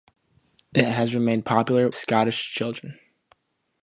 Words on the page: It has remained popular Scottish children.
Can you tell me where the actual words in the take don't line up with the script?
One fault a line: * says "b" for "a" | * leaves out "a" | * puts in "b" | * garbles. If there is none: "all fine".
all fine